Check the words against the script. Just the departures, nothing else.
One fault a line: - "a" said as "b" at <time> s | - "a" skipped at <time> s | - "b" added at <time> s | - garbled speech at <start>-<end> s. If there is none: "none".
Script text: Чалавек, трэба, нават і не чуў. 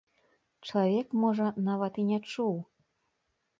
- "трэба" said as "можа" at 1.2 s